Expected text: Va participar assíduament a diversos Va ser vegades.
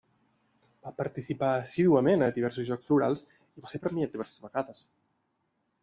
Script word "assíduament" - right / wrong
right